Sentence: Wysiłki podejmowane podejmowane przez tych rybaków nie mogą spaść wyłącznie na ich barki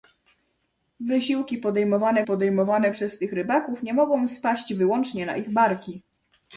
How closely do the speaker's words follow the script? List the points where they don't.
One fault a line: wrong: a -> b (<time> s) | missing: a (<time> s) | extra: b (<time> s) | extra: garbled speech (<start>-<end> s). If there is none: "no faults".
no faults